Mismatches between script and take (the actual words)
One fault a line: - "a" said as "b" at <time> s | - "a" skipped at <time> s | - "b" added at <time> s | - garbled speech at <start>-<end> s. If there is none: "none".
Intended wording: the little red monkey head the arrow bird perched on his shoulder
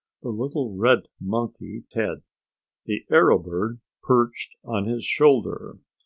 none